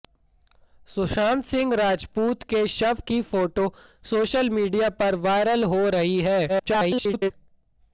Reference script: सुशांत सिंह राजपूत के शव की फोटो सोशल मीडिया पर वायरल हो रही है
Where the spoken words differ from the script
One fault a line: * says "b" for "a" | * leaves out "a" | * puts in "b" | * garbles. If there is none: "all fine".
* garbles